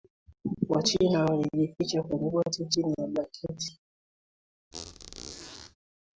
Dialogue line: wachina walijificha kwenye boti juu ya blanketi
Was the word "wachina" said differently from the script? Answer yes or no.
no